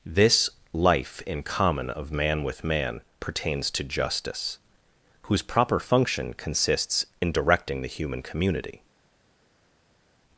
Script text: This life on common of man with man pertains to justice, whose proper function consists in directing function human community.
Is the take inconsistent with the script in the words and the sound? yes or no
yes